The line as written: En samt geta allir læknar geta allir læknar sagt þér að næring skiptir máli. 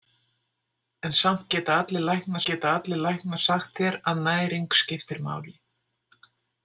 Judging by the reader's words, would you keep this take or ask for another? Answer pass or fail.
pass